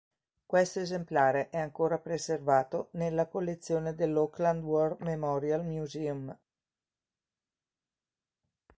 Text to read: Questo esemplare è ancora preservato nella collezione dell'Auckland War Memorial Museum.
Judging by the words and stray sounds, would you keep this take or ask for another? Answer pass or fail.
pass